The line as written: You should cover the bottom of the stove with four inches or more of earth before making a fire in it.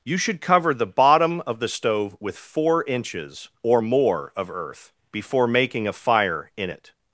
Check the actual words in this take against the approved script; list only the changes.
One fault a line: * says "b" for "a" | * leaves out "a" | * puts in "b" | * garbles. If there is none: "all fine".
all fine